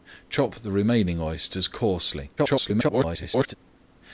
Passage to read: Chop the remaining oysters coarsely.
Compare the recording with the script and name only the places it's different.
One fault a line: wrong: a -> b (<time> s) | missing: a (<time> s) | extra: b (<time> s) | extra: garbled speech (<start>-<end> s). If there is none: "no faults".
extra: garbled speech (2.4-3.5 s)